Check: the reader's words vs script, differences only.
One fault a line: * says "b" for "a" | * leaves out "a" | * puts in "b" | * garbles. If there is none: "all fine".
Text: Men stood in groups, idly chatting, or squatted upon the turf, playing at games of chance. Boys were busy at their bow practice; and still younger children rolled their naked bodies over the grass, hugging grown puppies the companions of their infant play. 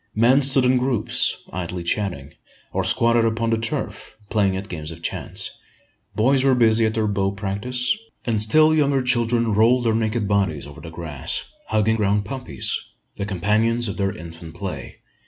all fine